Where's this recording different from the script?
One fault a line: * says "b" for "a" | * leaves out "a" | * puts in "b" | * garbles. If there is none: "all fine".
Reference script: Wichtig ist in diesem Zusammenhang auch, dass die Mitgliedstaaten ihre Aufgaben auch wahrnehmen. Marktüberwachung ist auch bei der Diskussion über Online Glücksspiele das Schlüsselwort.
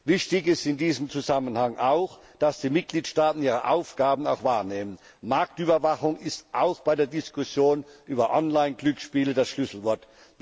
all fine